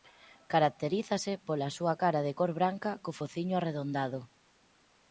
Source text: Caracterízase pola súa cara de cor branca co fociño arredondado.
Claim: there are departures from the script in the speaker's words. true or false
false